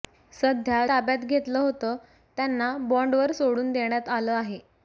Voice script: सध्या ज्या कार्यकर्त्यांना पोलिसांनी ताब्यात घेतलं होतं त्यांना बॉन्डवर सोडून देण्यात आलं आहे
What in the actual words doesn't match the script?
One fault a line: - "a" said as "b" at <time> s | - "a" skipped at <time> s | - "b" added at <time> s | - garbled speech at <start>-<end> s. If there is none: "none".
- "ज्या कार्यकर्त्यांना पोलिसांनी" skipped at 0.9 s